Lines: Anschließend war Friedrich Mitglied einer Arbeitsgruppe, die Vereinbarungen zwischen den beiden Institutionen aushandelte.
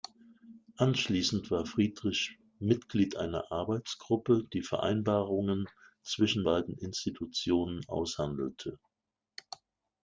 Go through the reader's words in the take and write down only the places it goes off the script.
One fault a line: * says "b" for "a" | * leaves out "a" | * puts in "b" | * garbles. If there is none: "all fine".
* leaves out "den"